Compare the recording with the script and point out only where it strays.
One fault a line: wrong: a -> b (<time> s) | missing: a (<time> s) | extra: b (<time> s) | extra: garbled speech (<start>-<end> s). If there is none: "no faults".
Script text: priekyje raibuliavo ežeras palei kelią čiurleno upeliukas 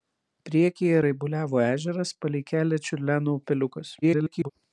extra: garbled speech (4.0-4.5 s)